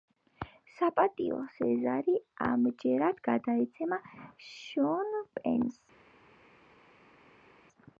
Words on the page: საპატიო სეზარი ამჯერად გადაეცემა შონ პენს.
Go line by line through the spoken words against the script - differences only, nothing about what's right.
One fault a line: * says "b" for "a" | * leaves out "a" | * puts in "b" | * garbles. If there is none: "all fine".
all fine